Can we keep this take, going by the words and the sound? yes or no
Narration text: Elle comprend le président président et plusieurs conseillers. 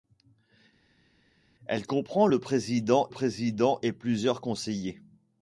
yes